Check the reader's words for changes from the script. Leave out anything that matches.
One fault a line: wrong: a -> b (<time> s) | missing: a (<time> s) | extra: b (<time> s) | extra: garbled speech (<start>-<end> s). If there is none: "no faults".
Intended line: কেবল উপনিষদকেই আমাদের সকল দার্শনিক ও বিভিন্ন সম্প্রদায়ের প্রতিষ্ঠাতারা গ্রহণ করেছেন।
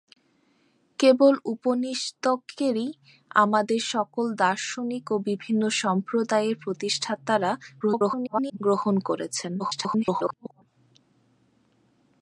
extra: garbled speech (7.8-8.6 s)
extra: garbled speech (9.6-10.6 s)